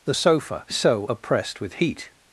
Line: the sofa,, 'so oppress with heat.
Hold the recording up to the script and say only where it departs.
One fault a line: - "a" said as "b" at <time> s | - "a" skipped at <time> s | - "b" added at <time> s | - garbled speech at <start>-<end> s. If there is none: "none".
- "oppress" said as "oppressed" at 1.1 s